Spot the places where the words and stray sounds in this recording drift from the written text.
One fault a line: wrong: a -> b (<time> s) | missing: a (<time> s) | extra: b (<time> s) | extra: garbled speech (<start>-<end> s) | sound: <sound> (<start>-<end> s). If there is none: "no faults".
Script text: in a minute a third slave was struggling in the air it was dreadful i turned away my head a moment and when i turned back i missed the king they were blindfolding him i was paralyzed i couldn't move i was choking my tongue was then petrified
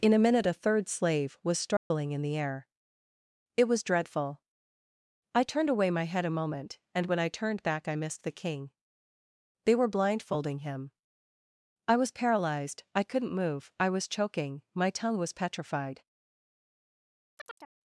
sound: dropout (1.8-1.9 s)
missing: then (15.3 s)
sound: chirp (17.4-17.7 s)